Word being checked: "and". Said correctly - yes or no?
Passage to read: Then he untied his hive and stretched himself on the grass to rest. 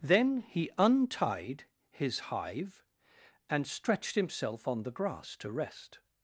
yes